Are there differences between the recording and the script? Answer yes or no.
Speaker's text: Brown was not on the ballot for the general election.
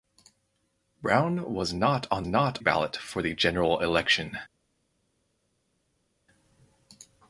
yes